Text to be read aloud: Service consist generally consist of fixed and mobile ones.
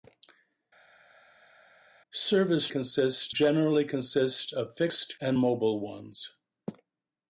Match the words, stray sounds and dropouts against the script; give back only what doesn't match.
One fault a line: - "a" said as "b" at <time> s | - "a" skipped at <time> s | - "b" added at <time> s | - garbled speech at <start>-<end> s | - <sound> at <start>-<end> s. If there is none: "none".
none